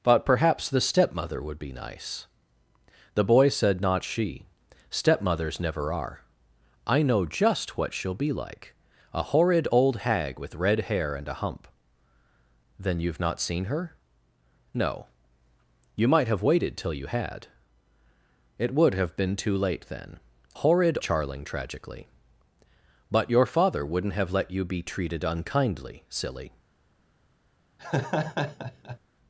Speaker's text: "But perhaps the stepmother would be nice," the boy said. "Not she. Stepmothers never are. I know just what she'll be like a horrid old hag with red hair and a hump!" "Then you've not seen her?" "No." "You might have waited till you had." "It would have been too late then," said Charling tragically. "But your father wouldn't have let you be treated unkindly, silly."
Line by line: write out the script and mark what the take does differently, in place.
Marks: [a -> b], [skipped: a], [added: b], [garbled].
"But perhaps the stepmother would be nice," the boy said. "Not she. Stepmothers never are. I know just what she'll be like a horrid old hag with red hair and a hump!" "Then you've not seen her?" "No." "You might have waited till you had." "It would have been too late then," [said -> horrid] Charling tragically. "But your father wouldn't have let you be treated unkindly, silly."